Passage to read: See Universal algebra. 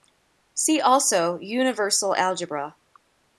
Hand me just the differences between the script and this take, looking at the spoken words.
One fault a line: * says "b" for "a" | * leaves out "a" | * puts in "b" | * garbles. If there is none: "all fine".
* puts in "also"